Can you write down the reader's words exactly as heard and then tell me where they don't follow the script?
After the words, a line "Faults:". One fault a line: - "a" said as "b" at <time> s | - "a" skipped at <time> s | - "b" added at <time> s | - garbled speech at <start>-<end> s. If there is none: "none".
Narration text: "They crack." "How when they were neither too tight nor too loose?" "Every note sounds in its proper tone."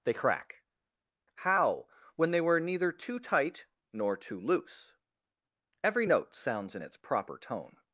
"They crack." "How when they were neither too tight nor too loose?" "Every note sounds in its proper tone."
Faults:
none